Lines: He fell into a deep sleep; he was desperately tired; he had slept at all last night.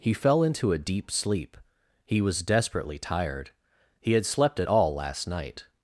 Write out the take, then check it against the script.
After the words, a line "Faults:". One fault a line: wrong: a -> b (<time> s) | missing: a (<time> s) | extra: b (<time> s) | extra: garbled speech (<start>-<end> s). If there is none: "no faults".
He fell into a deep sleep; he was desperately tired; he had slept at all last night.
Faults:
no faults